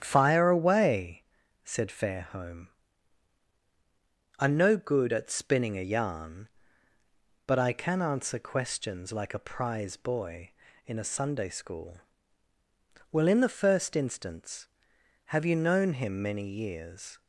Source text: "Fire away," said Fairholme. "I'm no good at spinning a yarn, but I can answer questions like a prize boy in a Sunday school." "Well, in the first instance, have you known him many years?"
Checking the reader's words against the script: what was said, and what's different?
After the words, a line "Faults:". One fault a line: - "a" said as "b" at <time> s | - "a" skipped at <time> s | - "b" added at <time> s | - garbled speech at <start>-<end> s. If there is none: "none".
"Fire away," said Fairholme. "I'm no good at spinning a yarn, but I can answer questions like a prize boy in a Sunday school." "Well, in the first instance, have you known him many years?"
Faults:
none